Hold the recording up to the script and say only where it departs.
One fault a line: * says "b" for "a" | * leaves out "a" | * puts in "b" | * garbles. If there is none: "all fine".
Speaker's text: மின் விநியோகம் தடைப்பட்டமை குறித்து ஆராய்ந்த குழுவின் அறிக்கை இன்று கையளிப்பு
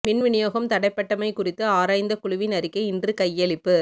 all fine